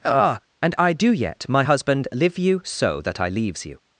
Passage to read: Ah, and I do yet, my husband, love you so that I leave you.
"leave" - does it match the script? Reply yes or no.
no